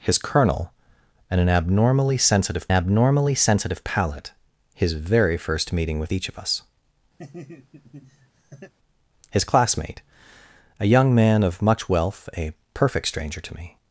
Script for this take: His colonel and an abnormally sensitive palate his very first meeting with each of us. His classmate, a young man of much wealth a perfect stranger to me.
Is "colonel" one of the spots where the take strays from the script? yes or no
no